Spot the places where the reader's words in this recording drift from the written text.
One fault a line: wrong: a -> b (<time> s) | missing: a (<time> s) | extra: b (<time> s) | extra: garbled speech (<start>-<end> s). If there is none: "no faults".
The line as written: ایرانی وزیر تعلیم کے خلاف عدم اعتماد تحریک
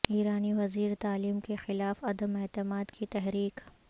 extra: کی (2.9 s)